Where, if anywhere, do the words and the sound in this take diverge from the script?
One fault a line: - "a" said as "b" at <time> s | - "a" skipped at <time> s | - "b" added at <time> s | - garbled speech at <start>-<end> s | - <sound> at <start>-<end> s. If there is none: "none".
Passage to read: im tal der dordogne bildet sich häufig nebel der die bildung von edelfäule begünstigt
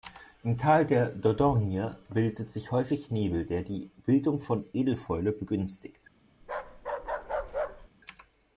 - bark at 6.4-7.9 s